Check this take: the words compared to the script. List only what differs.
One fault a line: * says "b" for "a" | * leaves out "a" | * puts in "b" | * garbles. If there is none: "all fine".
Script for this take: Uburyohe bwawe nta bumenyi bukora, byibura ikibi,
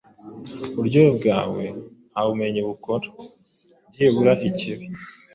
all fine